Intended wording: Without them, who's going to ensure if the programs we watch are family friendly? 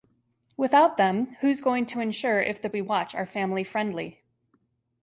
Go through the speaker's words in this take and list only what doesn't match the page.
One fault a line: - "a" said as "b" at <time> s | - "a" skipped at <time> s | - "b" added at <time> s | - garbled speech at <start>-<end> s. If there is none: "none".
- "programs" skipped at 2.7 s